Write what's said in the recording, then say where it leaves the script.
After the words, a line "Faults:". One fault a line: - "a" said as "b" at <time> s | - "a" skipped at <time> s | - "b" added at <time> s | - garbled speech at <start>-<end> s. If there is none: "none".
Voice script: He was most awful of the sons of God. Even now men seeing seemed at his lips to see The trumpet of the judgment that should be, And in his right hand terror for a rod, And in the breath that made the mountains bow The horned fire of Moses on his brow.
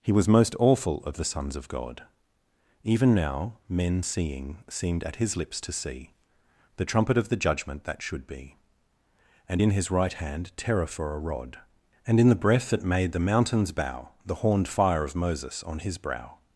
He was most awful of the sons of God. Even now men seeing seemed at his lips to see The trumpet of the judgment that should be, And in his right hand terror for a rod, And in the breath that made the mountains bow The horned fire of Moses on his brow.
Faults:
none